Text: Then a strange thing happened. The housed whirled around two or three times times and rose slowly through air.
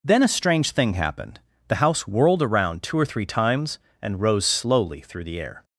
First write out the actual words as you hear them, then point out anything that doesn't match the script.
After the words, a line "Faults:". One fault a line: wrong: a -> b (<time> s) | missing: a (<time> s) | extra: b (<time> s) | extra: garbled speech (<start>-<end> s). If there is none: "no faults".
Then a strange thing happened. The house whirled around two or three times and rose slowly through the air.
Faults:
wrong: housed -> house (1.7 s)
missing: times (3.8 s)
extra: the (5.3 s)